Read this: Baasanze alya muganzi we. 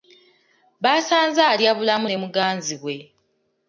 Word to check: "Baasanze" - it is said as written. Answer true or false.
true